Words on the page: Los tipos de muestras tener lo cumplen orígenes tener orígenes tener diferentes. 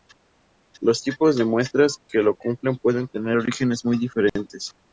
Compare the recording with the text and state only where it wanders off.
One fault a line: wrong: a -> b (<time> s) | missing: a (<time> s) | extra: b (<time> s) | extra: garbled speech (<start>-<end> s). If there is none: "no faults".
wrong: tener -> que (2.1 s)
wrong: orígenes -> pueden (2.8 s)
wrong: tener -> muy (3.8 s)